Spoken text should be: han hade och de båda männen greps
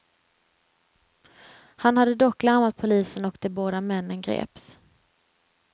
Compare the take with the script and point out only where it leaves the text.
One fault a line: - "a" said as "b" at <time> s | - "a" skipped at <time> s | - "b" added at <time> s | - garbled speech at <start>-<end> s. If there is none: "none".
- "dock larmat polisen" added at 2.1 s